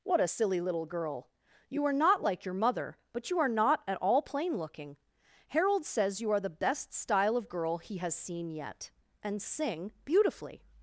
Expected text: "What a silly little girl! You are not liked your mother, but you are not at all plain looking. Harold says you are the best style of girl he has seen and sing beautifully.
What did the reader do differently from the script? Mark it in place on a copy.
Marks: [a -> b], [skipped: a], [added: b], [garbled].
"What a silly little girl! You are not [liked -> like] your mother, but you are not at all plain looking. Harold says you are the best style of girl he has seen [added: yet] and sing beautifully.